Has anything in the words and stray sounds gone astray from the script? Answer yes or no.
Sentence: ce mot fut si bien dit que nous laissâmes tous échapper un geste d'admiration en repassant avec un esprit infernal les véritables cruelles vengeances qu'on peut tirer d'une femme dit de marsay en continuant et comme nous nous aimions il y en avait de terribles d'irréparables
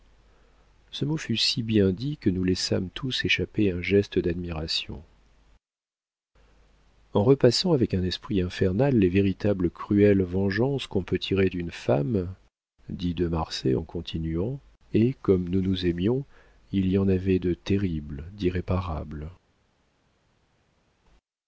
no